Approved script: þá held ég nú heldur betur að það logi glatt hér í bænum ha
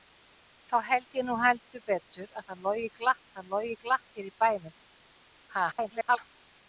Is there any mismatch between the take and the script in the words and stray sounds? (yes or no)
yes